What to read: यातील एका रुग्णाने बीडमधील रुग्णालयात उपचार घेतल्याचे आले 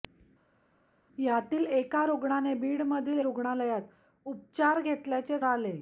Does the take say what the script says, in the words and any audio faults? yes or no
yes